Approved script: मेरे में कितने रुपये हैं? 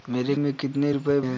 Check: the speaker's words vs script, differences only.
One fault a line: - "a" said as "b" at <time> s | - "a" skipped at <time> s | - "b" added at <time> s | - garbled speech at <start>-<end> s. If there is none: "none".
none